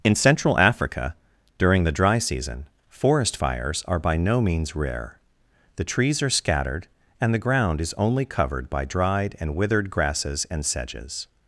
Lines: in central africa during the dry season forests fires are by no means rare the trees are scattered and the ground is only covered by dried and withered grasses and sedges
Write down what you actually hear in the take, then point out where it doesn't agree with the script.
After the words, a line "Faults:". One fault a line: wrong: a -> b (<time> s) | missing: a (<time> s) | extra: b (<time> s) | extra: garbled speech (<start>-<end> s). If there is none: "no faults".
in central africa during the dry season forest fires are by no means rare the trees are scattered and the ground is only covered by dried and withered grasses and sedges
Faults:
wrong: forests -> forest (2.9 s)